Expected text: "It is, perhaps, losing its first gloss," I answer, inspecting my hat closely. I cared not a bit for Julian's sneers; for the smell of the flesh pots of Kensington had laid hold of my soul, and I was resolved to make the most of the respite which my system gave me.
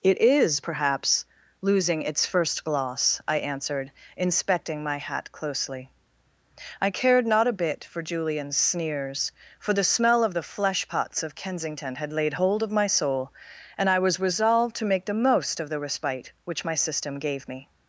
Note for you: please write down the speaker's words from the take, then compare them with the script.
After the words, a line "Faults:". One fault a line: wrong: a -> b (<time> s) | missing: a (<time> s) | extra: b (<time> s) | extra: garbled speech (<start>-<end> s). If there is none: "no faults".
"It is, perhaps, losing its first gloss," I answered, inspecting my hat closely. I cared not a bit for Julian's sneers; for the smell of the flesh pots of Kensington had laid hold of my soul, and I was resolved to make the most of the respite which my system gave me.
Faults:
wrong: answer -> answered (3.4 s)